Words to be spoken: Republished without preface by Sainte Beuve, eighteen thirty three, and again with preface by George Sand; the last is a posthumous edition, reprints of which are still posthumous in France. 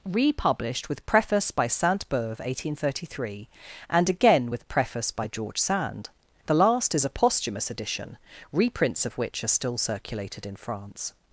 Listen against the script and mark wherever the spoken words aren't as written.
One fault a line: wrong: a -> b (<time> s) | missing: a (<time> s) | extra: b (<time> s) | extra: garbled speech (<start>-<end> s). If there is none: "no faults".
wrong: without -> with (0.9 s)
wrong: posthumous -> circulated (9.8 s)